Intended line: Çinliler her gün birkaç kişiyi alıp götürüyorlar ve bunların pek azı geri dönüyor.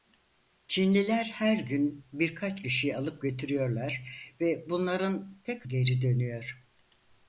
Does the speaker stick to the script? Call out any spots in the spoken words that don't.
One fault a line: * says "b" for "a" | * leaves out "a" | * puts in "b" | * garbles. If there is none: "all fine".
* leaves out "azı"